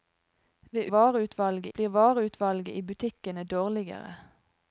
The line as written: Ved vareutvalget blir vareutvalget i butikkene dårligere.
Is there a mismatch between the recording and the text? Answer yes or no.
no